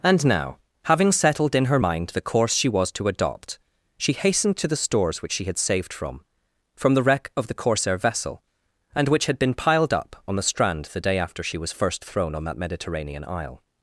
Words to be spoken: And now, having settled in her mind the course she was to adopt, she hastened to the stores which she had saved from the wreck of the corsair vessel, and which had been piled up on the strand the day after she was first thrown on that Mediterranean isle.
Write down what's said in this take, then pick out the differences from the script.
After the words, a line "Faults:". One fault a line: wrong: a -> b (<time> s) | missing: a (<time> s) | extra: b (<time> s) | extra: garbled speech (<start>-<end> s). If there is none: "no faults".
And now, having settled in her mind the course she was to adopt, she hastened to the stores which she had saved from from the wreck of the corsair vessel, and which had been piled up on the strand the day after she was first thrown on that Mediterranean isle.
Faults:
extra: from (6.7 s)